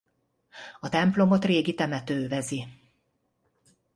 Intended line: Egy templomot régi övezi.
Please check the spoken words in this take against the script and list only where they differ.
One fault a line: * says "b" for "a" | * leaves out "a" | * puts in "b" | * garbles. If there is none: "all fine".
* says "A" for "Egy"
* puts in "temető"